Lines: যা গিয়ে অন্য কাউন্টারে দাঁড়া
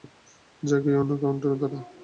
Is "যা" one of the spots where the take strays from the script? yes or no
no